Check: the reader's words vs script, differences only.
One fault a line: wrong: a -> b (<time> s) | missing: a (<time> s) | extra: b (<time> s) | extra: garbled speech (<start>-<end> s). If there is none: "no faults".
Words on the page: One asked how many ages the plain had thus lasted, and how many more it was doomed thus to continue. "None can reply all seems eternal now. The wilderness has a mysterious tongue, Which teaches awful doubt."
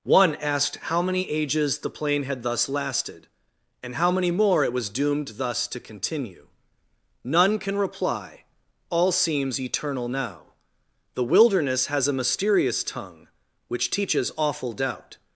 no faults